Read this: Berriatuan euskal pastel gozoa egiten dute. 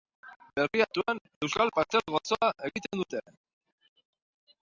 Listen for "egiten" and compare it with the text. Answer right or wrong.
right